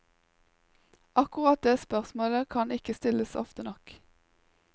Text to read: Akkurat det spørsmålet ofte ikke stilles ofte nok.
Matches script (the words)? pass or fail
fail